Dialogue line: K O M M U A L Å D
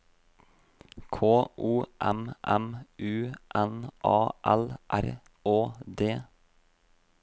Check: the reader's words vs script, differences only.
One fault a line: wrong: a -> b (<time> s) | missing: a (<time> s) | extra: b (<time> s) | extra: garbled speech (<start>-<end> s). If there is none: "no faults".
extra: N (3.5 s)
extra: R (4.9 s)